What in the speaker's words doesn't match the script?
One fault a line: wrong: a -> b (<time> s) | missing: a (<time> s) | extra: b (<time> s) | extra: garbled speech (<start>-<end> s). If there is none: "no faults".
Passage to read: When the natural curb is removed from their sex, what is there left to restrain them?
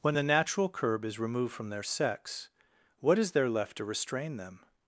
no faults